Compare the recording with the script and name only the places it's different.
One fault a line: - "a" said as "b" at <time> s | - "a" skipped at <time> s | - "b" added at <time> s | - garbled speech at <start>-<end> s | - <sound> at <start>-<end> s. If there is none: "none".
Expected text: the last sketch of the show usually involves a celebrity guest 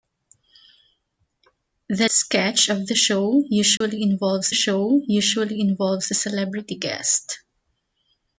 - "last" skipped at 2.1 s
- dropout at 3.8-3.8 s
- "show usually involves" added at 4.5 s